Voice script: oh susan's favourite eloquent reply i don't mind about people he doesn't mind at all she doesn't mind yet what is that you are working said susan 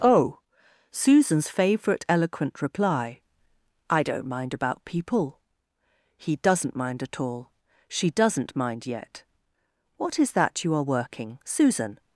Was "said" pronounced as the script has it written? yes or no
no